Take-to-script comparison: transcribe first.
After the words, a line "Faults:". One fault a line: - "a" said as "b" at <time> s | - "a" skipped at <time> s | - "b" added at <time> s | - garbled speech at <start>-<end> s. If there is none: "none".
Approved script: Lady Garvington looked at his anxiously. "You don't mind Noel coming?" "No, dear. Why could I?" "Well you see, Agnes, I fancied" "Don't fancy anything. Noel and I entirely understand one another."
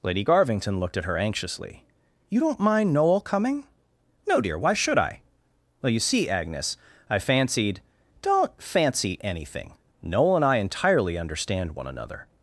Lady Garvington looked at her anxiously. "You don't mind Noel coming?" "No, dear. Why should I?" "Well you see, Agnes, I fancied" "Don't fancy anything. Noel and I entirely understand one another."
Faults:
- "his" said as "her" at 1.1 s
- "could" said as "should" at 4.7 s